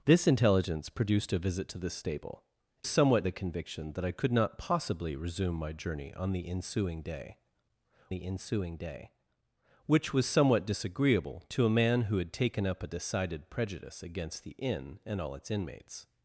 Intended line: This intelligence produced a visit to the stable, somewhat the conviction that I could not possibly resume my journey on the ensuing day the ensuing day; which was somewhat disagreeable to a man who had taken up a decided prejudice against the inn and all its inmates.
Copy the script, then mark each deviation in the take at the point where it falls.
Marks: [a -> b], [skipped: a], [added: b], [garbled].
This intelligence produced a visit to the stable, somewhat the conviction that I could not possibly resume my journey on the ensuing day the ensuing day; which was somewhat disagreeable to a man who had taken up a decided prejudice against the inn and all its inmates.